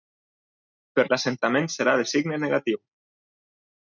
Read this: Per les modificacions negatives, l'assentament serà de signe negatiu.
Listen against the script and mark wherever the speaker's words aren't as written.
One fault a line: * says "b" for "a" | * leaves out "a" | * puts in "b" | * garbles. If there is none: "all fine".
* leaves out "les modificacions negatives"